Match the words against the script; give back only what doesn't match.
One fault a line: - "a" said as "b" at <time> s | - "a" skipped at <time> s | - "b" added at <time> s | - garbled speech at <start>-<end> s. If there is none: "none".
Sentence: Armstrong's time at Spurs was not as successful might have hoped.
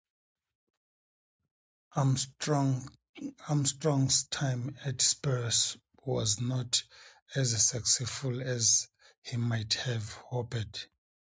- "as he" added at 8.4 s